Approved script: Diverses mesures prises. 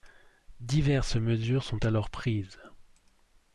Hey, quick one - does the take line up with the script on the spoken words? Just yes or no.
no